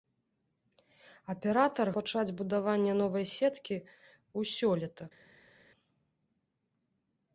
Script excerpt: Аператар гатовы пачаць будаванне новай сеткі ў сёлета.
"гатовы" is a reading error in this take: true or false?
true